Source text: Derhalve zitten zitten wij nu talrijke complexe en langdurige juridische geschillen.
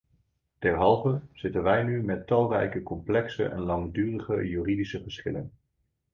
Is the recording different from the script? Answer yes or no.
yes